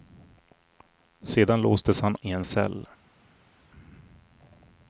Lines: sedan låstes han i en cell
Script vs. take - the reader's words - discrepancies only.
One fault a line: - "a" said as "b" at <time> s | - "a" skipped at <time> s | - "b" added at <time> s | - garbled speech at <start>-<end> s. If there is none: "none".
none